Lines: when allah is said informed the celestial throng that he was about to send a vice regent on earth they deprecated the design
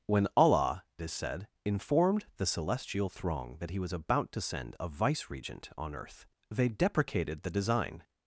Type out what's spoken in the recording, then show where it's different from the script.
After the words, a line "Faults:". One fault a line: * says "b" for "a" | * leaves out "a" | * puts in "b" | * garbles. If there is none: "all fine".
when allah is said informed the celestial throng that he was about to send a vice regent on earth they deprecated the design
Faults:
all fine